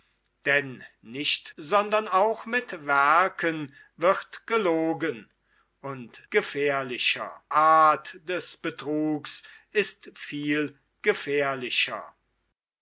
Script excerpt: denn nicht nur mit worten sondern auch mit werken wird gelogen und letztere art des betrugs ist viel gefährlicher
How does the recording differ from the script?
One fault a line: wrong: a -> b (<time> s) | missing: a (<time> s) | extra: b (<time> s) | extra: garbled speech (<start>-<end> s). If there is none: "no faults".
missing: nur mit worten (1.5 s)
wrong: letztere -> gefährlicher (6.3 s)